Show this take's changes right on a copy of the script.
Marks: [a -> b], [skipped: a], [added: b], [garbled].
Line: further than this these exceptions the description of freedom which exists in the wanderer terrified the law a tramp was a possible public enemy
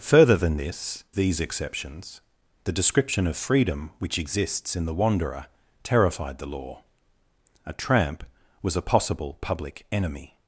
further than this these exceptions the description of freedom which exists in the wanderer terrified the law a tramp was a possible public enemy